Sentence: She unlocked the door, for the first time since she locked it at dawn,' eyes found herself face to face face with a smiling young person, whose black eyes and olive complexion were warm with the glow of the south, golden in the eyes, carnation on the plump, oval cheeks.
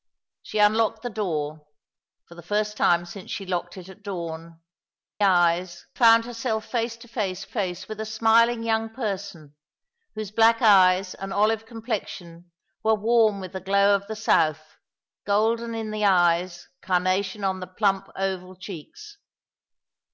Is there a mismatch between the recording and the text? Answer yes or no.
no